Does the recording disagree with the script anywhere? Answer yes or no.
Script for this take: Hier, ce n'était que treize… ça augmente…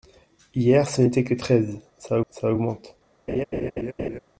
yes